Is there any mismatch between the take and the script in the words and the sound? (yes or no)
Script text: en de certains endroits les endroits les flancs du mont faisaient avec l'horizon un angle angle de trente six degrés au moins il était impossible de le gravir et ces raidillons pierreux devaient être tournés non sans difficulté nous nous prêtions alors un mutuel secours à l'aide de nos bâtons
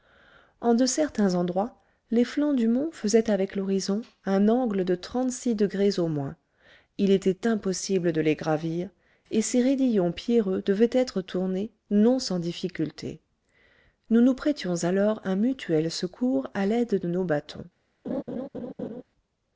yes